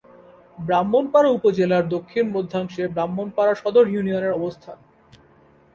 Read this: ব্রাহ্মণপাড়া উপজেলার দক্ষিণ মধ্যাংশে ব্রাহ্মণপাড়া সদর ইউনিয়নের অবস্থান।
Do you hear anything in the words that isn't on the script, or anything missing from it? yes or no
no